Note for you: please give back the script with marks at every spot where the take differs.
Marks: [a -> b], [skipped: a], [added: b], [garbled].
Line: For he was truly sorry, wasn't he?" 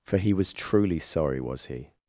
For he was truly sorry, [wasn't -> was] he?"